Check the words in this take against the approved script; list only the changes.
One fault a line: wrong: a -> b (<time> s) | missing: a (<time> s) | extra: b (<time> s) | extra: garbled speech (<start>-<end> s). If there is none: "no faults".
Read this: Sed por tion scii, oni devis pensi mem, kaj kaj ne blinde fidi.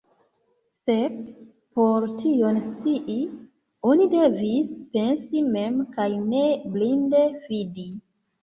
missing: kaj (6.1 s)